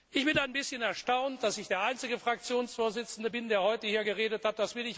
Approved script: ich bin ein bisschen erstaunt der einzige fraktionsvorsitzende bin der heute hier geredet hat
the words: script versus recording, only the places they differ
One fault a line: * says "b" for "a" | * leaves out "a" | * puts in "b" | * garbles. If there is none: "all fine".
* puts in "dass ich"